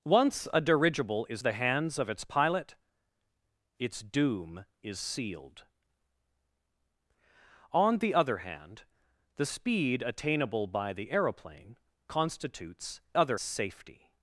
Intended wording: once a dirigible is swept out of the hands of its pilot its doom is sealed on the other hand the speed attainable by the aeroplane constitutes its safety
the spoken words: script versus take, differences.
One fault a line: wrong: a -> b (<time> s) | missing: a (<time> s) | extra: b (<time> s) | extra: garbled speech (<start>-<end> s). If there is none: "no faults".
missing: swept out of (1.4 s)
wrong: its -> other (13.1 s)